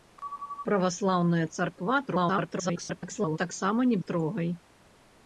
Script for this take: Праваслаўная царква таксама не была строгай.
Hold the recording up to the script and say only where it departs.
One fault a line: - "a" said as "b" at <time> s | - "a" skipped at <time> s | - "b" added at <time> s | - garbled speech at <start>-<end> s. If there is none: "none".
- garbled speech at 2.1-3.4 s
- "была" skipped at 4.0 s